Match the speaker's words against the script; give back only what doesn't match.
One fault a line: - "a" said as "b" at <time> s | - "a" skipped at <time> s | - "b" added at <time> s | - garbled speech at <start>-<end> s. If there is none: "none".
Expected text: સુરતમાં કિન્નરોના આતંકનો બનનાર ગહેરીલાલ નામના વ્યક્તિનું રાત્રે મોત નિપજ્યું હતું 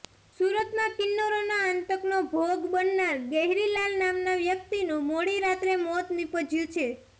- "ભોગ" added at 2.3 s
- "મોડી" added at 5.1 s
- "હતું" said as "છે" at 6.7 s